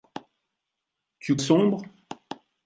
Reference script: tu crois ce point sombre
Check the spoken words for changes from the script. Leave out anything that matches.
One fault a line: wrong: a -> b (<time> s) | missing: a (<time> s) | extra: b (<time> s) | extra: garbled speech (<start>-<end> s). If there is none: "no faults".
missing: crois ce point (1.4 s)